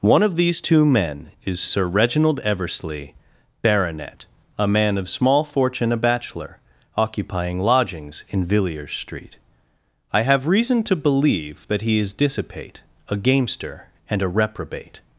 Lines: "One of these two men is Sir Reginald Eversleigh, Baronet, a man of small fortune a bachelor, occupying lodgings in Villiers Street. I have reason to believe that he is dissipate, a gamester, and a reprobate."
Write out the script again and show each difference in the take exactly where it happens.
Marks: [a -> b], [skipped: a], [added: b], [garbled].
"One of these two men is Sir Reginald Eversleigh, Baronet, a man of small fortune a bachelor, occupying lodgings in Villiers Street. I have reason to believe that he is dissipate, a gamester, and a reprobate."